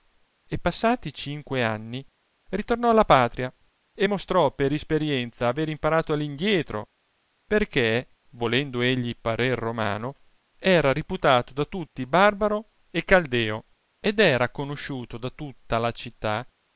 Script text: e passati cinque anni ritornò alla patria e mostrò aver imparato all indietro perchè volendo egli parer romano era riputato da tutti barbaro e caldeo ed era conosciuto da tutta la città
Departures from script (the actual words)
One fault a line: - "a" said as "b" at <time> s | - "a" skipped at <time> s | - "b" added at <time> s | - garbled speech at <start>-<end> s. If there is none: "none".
- "per isperienza" added at 4.5 s